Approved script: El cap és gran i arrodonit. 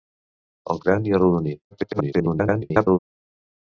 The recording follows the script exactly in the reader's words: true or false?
false